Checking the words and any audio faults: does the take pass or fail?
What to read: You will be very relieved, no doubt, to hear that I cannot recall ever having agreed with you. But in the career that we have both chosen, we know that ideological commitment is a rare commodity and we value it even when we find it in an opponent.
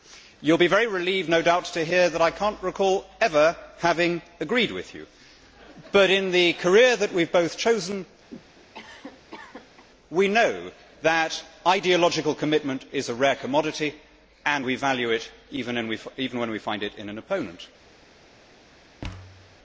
fail